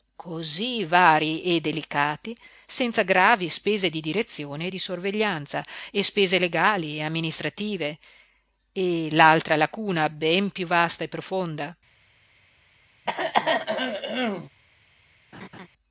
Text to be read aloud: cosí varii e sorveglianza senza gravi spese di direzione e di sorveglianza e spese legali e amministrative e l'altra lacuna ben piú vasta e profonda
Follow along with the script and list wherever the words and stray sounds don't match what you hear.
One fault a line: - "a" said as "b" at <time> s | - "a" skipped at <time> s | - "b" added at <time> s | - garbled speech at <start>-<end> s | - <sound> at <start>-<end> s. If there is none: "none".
- "sorveglianza" said as "delicati" at 1.6 s
- throat clearing at 13.1-14.5 s
- laugh at 15.3-15.7 s